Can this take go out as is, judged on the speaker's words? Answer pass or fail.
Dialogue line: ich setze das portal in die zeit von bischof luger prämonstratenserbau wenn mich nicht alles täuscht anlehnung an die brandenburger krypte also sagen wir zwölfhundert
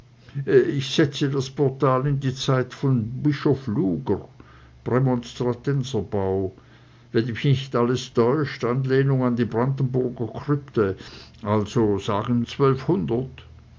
fail